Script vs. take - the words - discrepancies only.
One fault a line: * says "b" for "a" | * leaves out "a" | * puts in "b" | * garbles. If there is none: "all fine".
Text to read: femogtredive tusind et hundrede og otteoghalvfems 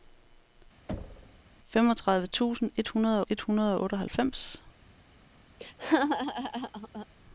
* puts in "et hundrede"